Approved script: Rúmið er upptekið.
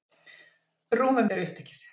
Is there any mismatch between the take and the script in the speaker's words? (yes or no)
no